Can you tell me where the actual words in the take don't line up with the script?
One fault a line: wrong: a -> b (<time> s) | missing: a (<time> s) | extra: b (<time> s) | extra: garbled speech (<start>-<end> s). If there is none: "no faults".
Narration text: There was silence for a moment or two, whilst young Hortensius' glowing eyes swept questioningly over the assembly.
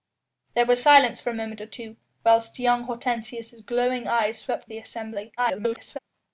missing: questioningly over (4.7 s)
extra: garbled speech (5.4-6.0 s)